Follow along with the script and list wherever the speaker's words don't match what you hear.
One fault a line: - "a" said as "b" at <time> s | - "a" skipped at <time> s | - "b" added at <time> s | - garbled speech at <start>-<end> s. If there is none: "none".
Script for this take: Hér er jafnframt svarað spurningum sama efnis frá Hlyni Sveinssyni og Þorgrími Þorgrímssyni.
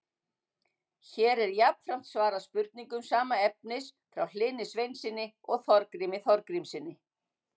none